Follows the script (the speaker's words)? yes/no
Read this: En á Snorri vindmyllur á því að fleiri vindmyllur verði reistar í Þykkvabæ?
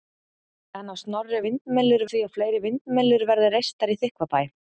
yes